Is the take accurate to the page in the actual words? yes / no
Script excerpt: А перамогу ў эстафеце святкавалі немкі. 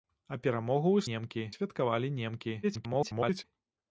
no